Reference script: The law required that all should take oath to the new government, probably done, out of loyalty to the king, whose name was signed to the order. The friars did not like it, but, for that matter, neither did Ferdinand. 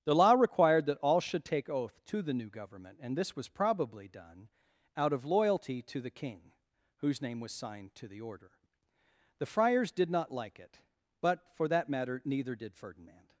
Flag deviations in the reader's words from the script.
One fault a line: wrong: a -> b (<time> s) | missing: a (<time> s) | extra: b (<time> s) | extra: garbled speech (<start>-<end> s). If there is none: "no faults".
extra: and this was (3.0 s)